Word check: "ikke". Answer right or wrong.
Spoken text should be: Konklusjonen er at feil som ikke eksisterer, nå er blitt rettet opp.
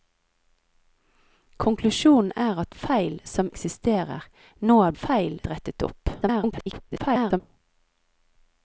wrong